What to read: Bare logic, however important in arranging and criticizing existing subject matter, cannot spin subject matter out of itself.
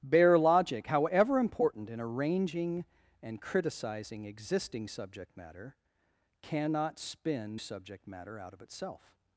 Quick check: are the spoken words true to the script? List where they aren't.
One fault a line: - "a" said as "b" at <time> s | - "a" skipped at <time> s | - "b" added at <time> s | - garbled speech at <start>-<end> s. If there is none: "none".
none